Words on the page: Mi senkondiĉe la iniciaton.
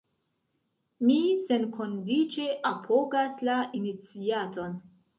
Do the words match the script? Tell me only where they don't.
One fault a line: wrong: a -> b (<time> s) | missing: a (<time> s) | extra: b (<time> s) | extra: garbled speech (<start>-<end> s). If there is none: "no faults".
extra: apogas (2.7 s)